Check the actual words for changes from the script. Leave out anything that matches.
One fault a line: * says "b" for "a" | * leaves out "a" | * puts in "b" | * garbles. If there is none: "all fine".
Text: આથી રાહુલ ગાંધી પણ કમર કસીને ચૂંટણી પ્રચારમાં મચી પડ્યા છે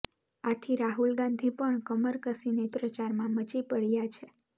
* leaves out "ચૂંટણી"